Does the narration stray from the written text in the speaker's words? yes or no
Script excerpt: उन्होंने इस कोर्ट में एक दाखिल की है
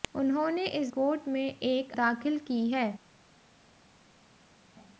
no